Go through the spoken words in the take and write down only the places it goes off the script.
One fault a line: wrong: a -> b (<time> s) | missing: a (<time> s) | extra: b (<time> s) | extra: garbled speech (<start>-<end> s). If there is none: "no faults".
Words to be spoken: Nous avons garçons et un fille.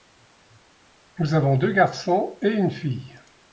extra: deux (1.6 s)
wrong: un -> une (2.5 s)